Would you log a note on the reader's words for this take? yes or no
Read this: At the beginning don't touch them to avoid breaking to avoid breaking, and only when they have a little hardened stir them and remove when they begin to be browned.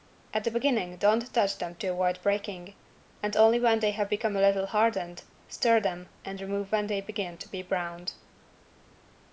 yes